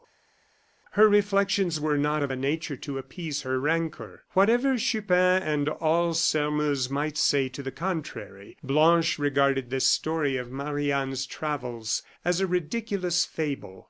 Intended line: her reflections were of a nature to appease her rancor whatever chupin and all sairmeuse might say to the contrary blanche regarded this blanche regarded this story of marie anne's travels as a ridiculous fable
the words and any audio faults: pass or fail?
fail